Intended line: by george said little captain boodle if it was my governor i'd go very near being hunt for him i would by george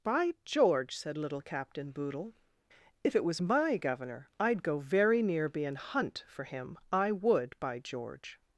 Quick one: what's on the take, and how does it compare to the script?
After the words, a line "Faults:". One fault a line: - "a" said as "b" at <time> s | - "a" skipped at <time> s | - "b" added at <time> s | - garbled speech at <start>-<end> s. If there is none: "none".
by george said little captain boodle if it was my governor i'd go very near being hunt for him i would by george
Faults:
none